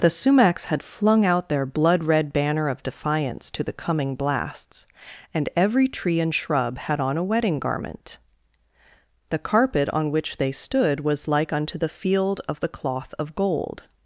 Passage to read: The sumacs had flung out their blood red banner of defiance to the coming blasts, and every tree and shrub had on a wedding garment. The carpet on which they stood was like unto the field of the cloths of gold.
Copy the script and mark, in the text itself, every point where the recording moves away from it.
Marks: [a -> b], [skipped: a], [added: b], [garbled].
The sumacs had flung out their blood red banner of defiance to the coming blasts, and every tree and shrub had on a wedding garment. The carpet on which they stood was like unto the field of the [cloths -> cloth] of gold.